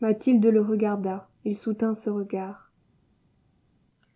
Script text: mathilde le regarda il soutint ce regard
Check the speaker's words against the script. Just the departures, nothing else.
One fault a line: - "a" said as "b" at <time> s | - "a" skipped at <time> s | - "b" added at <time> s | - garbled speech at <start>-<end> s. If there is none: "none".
none